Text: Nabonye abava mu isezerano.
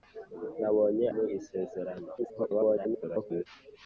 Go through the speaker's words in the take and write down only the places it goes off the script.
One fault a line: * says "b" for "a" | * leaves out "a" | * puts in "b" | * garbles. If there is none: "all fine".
* leaves out "abava"
* garbles